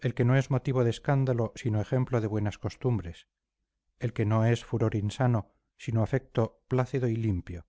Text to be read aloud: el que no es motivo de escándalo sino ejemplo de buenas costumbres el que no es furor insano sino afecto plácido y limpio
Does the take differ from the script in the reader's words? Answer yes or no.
no